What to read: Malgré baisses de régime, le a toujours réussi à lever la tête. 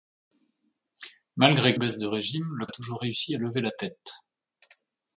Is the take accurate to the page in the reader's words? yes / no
yes